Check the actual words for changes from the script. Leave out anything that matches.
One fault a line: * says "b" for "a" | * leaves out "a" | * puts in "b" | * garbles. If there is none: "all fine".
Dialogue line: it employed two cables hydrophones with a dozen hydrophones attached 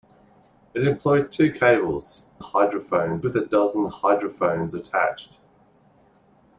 all fine